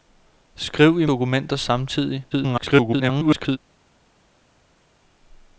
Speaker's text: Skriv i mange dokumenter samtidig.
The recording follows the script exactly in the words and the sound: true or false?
false